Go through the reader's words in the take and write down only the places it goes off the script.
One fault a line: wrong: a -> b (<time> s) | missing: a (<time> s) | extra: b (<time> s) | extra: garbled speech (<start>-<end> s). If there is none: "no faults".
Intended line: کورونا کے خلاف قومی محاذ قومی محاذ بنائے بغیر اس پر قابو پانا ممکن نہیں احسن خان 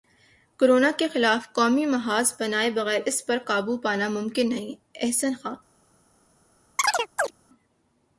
missing: قومی محاذ (2.3 s)